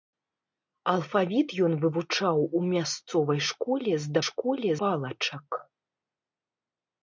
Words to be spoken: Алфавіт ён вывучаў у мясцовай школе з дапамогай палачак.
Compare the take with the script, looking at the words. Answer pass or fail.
fail